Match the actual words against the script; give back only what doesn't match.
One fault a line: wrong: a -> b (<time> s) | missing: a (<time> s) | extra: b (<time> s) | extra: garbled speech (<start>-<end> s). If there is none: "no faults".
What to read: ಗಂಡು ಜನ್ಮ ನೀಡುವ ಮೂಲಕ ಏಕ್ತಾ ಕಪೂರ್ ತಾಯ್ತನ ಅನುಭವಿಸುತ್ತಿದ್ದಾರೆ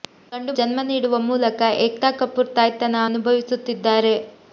no faults